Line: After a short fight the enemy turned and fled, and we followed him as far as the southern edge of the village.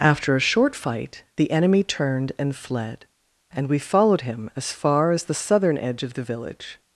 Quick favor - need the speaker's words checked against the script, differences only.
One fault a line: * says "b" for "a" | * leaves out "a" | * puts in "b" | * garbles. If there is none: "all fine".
all fine